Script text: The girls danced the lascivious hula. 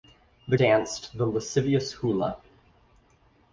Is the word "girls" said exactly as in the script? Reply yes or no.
no